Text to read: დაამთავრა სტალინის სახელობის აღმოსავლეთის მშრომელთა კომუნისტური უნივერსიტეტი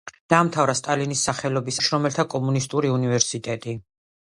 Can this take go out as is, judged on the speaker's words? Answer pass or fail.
fail